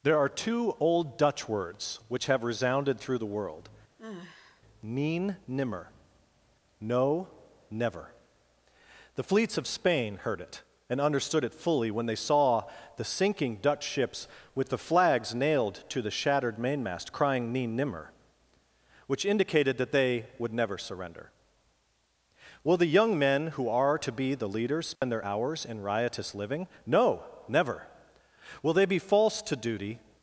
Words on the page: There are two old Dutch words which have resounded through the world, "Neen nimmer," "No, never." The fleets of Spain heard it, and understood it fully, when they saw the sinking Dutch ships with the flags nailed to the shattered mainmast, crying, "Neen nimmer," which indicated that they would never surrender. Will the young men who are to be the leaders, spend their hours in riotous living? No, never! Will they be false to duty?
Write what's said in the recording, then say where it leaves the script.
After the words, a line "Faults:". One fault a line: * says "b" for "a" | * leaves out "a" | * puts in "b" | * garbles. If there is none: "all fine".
There are two old Dutch words which have resounded through the world, "Neen nimmer," "No, never." The fleets of Spain heard it, and understood it fully, when they saw the sinking Dutch ships with the flags nailed to the shattered mainmast, crying, "Neen nimmer," which indicated that they would never surrender. Will the young men who are to be the leaders, spend their hours in riotous living? No, never! Will they be false to duty?
Faults:
all fine